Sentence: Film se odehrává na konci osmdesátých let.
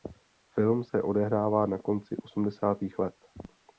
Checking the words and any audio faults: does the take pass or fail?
pass